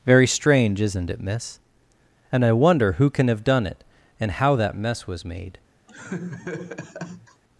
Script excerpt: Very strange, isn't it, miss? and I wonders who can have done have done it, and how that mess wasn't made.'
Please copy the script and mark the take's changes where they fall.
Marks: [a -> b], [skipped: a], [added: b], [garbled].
Very strange, isn't it, miss? and I [wonders -> wonder] who can have done [skipped: have done] it, and how that mess [wasn't -> was] made.'